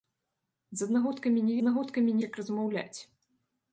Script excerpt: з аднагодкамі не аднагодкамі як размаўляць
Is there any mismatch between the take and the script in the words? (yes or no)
no